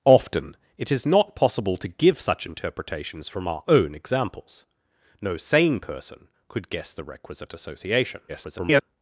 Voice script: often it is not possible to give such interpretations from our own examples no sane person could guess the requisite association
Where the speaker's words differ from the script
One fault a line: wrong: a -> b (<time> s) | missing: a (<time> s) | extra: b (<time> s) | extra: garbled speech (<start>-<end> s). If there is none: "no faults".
extra: garbled speech (8.3-8.8 s)